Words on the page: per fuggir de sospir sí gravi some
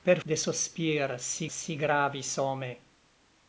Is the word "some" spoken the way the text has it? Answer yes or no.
yes